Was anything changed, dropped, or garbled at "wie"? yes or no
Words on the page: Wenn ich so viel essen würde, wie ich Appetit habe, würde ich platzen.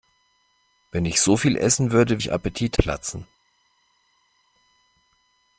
yes